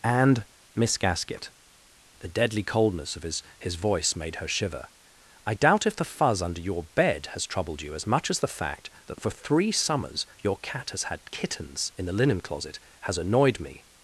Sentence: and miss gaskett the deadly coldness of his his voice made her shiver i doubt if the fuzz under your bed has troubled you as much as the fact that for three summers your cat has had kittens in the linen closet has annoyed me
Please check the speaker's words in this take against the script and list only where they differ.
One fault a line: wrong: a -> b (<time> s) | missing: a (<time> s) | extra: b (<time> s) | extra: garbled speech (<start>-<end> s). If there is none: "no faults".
no faults